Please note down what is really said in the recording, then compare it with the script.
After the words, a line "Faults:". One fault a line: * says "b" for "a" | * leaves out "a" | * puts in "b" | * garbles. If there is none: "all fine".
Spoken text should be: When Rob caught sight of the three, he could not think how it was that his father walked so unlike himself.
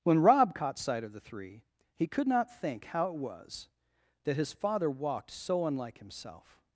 When Rob caught sight of the three, he could not think how it was that his father walked so unlike himself.
Faults:
all fine